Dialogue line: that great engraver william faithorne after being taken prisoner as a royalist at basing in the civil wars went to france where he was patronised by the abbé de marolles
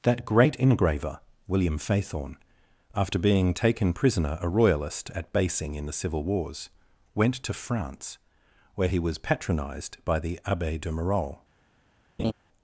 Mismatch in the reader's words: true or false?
true